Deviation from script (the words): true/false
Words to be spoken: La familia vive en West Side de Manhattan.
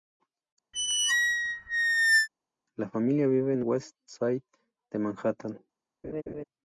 false